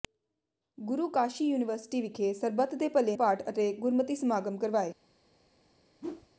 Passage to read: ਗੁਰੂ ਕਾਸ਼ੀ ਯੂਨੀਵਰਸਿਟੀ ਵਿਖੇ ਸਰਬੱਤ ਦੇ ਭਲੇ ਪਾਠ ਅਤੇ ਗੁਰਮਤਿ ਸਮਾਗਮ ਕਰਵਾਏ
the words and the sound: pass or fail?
fail